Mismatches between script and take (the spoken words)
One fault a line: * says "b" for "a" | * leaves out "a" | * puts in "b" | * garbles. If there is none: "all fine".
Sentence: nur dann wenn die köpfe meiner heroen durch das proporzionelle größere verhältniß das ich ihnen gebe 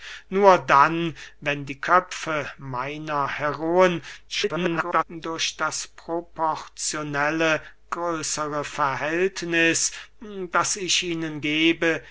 * garbles